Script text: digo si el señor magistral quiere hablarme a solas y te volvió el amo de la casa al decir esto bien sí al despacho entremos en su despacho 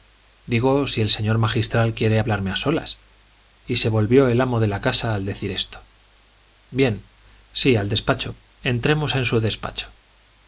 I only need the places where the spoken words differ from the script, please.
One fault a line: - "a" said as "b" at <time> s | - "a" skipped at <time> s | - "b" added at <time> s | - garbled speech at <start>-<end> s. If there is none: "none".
- "te" said as "se" at 3.8 s